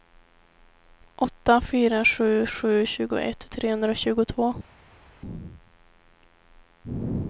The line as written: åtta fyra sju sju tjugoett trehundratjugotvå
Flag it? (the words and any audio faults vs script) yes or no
no